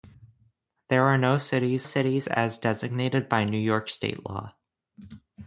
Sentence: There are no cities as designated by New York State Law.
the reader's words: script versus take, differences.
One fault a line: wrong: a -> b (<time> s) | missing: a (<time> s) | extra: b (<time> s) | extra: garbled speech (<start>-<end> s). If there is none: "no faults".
extra: cities (1.8 s)